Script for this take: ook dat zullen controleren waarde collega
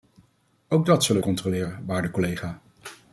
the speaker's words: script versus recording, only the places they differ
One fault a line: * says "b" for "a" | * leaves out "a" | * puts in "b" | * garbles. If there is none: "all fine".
all fine